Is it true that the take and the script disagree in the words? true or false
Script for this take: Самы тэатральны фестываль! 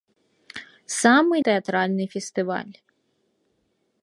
false